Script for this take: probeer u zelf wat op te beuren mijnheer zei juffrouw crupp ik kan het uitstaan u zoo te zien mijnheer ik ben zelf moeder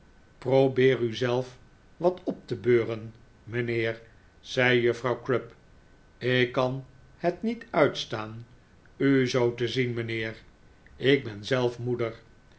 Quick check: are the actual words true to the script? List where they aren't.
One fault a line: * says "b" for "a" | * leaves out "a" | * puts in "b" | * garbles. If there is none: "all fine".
* puts in "niet"